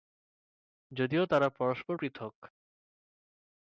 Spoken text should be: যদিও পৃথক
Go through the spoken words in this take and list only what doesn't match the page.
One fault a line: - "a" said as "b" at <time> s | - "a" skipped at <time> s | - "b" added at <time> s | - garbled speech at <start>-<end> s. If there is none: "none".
- "তারা পরস্পর" added at 1.2 s